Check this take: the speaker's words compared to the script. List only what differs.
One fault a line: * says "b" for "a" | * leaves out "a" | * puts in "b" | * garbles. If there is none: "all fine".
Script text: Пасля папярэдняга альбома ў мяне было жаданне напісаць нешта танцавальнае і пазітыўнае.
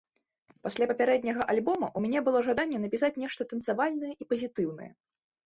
all fine